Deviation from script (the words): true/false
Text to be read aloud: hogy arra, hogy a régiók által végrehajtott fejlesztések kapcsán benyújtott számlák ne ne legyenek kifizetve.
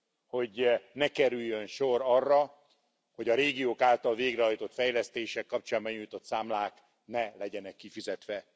true